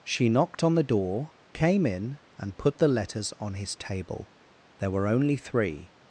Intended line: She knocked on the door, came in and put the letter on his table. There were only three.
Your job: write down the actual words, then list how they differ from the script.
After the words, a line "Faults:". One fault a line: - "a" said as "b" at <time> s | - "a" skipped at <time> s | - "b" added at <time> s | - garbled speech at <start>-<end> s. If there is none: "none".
She knocked on the door, came in and put the letters on his table. There were only three.
Faults:
- "letter" said as "letters" at 2.9 s